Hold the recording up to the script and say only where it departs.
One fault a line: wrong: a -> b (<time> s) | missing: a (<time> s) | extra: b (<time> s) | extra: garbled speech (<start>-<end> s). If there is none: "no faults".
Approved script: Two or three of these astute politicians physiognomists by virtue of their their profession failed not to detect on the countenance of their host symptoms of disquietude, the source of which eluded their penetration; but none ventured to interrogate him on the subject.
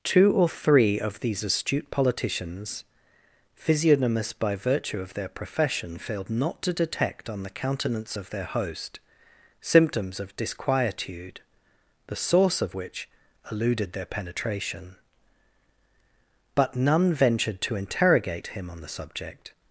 missing: their (5.3 s)